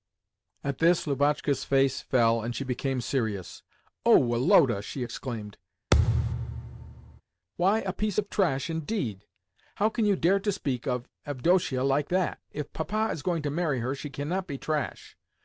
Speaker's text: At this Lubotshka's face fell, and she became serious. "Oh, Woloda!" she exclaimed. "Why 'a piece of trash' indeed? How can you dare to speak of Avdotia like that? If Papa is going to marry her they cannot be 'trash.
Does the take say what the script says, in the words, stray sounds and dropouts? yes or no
no